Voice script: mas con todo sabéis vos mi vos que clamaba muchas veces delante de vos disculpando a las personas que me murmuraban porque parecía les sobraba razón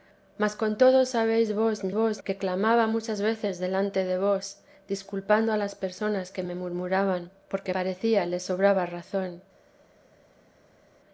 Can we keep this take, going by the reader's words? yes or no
yes